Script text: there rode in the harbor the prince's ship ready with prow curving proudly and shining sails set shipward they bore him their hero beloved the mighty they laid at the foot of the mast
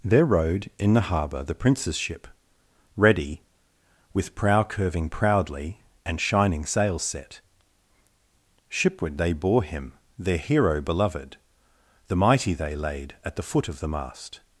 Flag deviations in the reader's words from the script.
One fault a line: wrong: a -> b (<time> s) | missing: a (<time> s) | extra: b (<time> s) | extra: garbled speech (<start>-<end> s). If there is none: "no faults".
no faults